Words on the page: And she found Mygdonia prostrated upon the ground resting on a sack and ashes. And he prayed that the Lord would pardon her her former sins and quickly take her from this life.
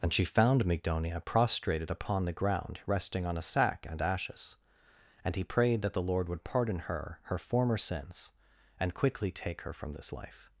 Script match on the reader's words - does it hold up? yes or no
yes